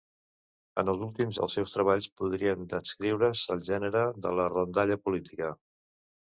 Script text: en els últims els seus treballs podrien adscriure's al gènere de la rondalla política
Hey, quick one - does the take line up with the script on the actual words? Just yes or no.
yes